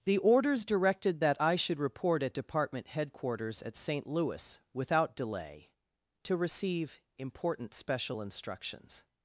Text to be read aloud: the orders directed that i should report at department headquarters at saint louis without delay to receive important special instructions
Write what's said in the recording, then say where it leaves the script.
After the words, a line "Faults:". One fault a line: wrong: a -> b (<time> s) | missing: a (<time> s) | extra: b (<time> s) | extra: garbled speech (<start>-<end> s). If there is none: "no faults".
the orders directed that i should report at department headquarters at saint louis without delay to receive important special instructions
Faults:
no faults